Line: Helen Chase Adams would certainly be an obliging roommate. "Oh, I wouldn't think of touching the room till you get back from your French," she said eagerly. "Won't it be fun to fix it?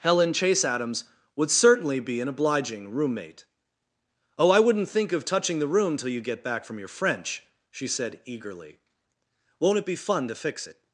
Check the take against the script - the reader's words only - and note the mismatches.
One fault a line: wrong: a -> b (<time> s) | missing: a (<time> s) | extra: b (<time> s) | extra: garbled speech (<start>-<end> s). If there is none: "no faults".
no faults